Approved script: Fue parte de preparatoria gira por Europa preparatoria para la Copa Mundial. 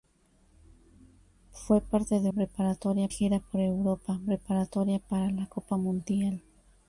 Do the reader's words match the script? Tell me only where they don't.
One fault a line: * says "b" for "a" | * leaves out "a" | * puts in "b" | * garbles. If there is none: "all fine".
all fine